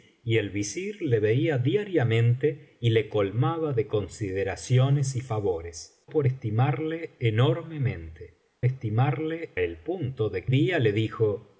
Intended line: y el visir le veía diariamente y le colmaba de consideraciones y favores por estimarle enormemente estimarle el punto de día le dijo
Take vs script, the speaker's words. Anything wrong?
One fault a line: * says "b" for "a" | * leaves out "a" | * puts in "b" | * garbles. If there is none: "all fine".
all fine